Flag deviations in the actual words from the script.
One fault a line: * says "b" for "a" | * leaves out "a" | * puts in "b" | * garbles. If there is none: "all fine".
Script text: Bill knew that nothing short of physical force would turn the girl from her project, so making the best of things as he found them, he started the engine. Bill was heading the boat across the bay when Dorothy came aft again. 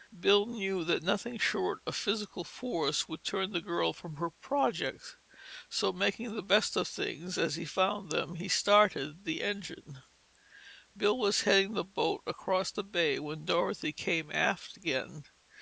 all fine